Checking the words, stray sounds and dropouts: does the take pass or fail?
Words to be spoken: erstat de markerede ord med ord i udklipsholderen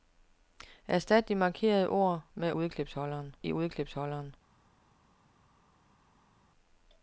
fail